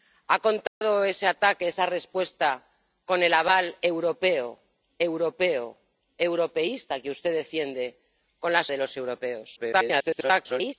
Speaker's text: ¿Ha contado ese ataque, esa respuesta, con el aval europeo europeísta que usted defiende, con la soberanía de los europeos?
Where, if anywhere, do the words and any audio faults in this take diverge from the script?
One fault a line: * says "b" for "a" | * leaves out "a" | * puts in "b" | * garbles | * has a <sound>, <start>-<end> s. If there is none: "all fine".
* has a dropout, 0.7-0.8 s
* puts in "europeo"
* leaves out "soberanía"
* garbles